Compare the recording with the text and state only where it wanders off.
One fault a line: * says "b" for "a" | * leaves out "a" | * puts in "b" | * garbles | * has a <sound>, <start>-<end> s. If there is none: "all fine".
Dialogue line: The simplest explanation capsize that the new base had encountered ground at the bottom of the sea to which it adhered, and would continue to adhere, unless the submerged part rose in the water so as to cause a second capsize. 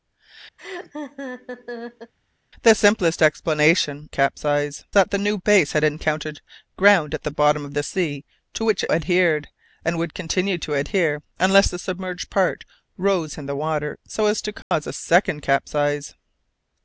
* has a laugh, 0.6-2.1 s
* has a dropout, 14.6-14.7 s